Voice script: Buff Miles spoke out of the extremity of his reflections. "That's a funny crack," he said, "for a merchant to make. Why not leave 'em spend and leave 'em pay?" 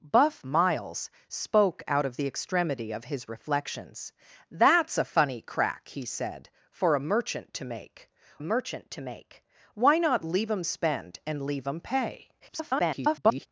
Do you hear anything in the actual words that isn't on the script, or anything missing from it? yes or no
yes